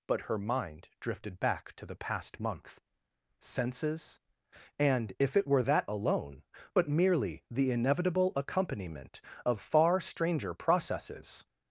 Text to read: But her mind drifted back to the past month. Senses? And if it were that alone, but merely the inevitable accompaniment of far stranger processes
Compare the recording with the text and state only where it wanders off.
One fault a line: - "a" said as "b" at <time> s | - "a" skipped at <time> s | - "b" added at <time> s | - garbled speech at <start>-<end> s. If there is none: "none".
none